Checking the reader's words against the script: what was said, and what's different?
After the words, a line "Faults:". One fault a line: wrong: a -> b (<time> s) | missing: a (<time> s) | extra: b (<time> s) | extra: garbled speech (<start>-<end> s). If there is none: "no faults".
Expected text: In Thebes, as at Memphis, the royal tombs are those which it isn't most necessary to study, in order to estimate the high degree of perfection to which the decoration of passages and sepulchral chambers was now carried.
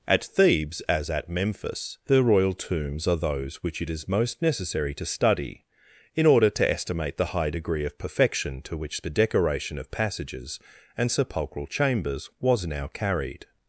At Thebes, as at Memphis, the royal tombs are those which it is most necessary to study, in order to estimate the high degree of perfection to which the decoration of passages and sepulchral chambers was now carried.
Faults:
wrong: In -> At (0.1 s)
wrong: isn't -> is (3.9 s)